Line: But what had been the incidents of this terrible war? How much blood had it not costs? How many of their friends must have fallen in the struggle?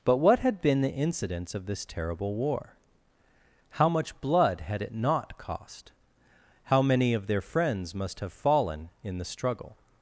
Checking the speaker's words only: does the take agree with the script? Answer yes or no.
no